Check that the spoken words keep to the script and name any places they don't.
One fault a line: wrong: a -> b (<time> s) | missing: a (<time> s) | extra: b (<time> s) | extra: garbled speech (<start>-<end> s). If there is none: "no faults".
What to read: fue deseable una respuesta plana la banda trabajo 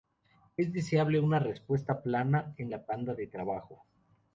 wrong: fue -> es (0.6 s)
extra: en (2.6 s)
extra: de (3.1 s)